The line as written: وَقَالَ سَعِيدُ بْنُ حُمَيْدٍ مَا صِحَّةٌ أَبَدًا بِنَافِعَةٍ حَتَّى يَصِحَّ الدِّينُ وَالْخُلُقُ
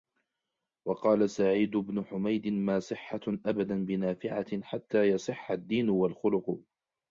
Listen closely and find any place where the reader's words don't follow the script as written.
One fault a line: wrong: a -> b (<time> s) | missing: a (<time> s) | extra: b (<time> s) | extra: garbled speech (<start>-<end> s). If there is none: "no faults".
no faults